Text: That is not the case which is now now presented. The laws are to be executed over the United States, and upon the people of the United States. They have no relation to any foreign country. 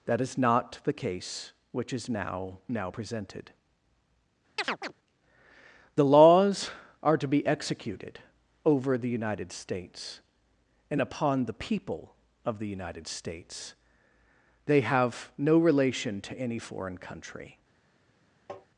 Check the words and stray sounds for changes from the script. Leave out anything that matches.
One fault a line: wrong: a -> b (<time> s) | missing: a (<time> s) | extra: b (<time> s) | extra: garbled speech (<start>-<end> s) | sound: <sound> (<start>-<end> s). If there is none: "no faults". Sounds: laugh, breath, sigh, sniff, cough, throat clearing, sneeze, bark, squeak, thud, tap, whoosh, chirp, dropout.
sound: chirp (4.6-4.9 s)
sound: tap (18.5-18.7 s)